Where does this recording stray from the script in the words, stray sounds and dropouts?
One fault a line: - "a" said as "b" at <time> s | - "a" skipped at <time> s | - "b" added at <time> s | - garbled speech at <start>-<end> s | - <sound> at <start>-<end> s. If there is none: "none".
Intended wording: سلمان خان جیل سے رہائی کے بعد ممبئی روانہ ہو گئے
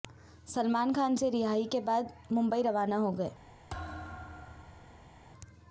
- "جیل" skipped at 1.1 s
- thud at 3.7-5.2 s